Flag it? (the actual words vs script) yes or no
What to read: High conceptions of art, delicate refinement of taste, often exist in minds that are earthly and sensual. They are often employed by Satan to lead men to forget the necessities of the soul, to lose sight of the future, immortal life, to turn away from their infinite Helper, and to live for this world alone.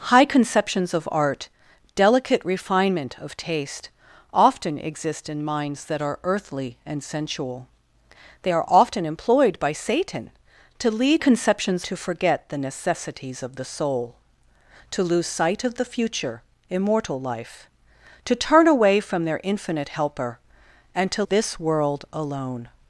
yes